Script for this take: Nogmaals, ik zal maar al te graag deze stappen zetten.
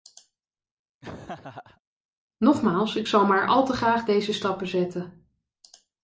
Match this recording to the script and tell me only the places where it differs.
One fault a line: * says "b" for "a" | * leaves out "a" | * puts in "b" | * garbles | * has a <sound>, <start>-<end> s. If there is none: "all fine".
* has a laugh, 1.0-1.8 s